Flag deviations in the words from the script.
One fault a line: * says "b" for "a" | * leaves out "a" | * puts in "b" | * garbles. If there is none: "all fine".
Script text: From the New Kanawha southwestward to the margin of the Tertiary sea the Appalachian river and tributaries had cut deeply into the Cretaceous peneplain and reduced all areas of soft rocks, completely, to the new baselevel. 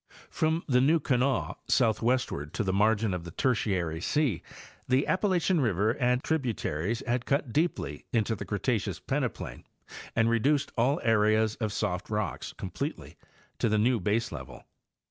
all fine